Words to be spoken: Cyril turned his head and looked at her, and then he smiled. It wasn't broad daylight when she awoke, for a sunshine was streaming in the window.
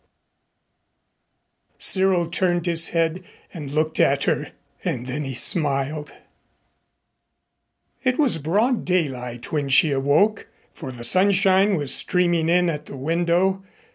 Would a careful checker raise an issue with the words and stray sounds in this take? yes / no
yes